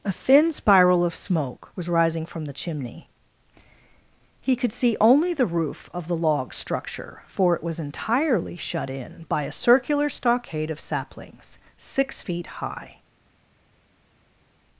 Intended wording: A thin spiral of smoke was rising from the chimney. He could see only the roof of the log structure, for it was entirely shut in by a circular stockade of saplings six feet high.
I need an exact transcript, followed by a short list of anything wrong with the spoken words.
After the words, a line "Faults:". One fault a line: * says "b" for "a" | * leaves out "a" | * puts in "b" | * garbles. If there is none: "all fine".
A thin spiral of smoke was rising from the chimney. He could see only the roof of the log structure, for it was entirely shut in by a circular stockade of saplings six feet high.
Faults:
all fine